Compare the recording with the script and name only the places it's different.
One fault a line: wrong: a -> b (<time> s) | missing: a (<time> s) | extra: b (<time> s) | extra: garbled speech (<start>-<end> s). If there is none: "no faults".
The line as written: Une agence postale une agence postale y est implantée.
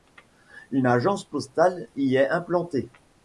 missing: une agence postale (1.9 s)